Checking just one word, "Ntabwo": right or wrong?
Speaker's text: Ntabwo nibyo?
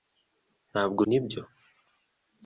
right